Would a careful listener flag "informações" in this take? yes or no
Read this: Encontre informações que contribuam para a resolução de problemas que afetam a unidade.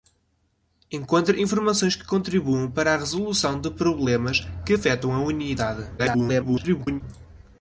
no